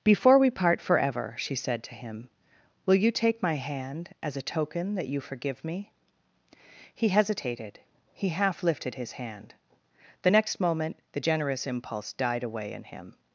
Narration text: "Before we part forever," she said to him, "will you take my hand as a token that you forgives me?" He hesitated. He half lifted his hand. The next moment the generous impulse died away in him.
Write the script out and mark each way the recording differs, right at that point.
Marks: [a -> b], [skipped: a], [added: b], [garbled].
"Before we part forever," she said to him, "will you take my hand as a token that you [forgives -> forgive] me?" He hesitated. He half lifted his hand. The next moment the generous impulse died away in him.